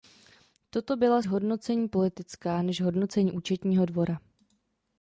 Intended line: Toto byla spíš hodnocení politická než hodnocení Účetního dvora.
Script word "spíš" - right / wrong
wrong